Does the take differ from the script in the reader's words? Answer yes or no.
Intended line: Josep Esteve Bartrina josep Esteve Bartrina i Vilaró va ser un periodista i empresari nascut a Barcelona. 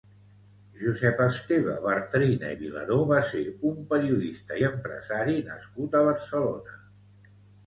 yes